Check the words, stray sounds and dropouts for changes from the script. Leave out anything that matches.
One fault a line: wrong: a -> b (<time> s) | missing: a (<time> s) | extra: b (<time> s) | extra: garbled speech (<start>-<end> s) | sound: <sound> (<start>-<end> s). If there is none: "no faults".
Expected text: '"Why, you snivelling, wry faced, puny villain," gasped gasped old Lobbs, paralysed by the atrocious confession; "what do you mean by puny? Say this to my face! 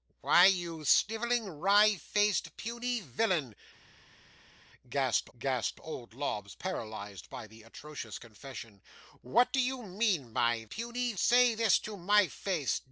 no faults